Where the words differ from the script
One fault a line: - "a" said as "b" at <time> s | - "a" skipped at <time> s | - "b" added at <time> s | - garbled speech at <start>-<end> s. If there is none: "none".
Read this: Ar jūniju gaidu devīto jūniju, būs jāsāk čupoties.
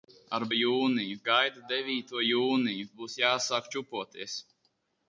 none